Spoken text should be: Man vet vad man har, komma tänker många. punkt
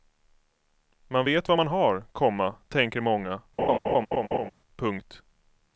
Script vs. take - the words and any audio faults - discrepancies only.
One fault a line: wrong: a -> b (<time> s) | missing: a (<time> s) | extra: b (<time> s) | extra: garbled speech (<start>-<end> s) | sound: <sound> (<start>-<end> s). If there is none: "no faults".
sound: laugh (3.6-4.5 s)